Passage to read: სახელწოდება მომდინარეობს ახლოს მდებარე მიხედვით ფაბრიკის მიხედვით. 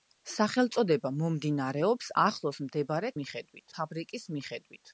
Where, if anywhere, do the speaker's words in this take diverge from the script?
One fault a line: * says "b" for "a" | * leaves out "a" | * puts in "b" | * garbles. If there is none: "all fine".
all fine